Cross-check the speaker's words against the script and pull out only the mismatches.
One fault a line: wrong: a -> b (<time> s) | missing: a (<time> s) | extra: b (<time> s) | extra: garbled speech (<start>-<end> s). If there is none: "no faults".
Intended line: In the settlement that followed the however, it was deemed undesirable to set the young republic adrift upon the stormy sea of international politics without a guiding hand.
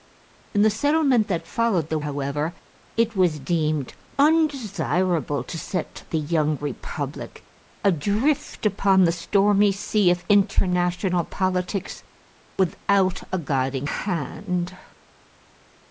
no faults